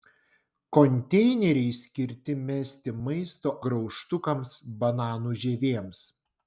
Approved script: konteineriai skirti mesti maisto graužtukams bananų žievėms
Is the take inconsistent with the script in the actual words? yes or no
no